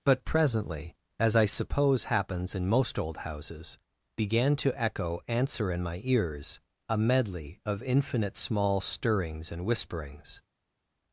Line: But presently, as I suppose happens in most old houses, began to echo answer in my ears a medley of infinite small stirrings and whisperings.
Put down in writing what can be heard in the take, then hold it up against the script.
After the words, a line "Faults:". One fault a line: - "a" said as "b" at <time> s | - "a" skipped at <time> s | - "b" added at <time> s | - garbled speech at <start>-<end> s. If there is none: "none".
But presently, as I suppose happens in most old houses, began to echo answer in my ears a medley of infinite small stirrings and whisperings.
Faults:
none